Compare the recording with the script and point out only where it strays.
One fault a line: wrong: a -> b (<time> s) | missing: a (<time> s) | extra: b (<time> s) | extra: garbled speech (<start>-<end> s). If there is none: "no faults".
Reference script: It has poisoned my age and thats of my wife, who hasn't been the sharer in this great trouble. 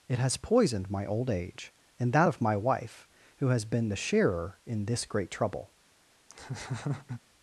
extra: old (1.1 s)
wrong: thats -> that (2.1 s)
wrong: hasn't -> has (3.5 s)